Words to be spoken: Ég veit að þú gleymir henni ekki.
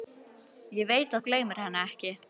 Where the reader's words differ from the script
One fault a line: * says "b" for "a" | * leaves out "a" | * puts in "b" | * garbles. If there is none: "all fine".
* leaves out "að"